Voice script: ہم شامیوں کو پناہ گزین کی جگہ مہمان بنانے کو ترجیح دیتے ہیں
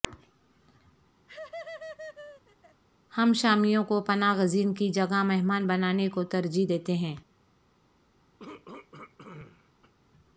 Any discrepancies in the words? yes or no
no